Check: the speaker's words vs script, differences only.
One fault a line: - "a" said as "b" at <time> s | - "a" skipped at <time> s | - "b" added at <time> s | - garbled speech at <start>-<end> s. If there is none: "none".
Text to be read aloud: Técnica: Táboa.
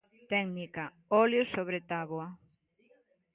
- "Óleo sobre" added at 1.2 s